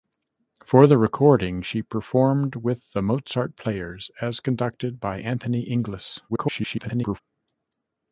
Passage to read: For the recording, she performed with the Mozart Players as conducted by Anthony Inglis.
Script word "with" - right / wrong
right